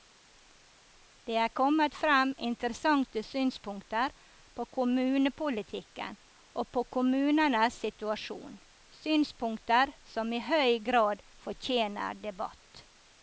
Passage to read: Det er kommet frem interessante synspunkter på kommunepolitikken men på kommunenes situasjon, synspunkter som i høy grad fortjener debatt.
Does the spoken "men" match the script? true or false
false